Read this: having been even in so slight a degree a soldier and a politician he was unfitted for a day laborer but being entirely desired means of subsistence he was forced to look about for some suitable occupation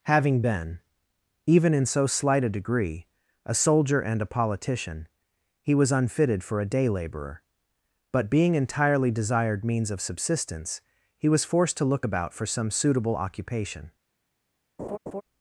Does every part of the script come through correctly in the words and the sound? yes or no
no